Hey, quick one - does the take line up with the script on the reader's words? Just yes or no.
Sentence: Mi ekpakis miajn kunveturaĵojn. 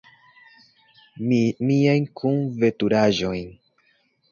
no